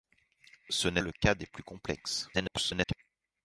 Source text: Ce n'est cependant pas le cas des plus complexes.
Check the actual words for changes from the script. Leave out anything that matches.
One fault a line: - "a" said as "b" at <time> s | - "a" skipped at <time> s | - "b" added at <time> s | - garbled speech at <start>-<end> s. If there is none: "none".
- "cependant pas" skipped at 1.0 s
- garbled speech at 2.3-2.9 s